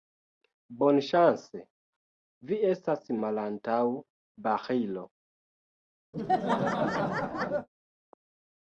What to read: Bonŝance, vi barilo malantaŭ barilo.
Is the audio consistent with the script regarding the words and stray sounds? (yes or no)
no